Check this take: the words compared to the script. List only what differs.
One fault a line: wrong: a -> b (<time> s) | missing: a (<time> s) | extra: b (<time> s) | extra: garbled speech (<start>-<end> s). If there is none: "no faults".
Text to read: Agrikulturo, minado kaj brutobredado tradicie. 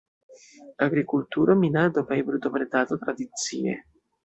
no faults